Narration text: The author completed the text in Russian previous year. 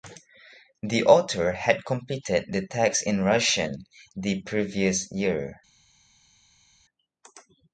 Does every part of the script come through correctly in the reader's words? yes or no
no